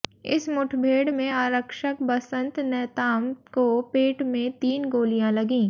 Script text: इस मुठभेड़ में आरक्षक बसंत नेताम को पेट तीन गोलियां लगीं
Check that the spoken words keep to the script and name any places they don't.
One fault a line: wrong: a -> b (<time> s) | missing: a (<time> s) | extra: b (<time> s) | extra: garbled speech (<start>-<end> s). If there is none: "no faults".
extra: में (4.3 s)